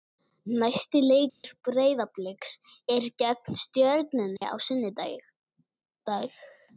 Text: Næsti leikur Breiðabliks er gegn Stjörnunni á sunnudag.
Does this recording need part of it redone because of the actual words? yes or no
no